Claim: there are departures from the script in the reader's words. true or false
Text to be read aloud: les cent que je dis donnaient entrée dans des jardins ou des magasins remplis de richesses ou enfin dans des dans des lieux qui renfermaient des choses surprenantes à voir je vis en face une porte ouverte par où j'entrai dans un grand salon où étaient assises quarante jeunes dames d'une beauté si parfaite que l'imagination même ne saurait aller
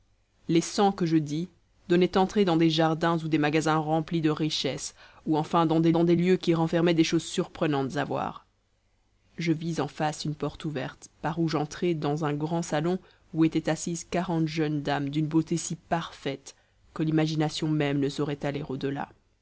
false